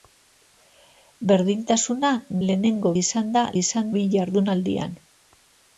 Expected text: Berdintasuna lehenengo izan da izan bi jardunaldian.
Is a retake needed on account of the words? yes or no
no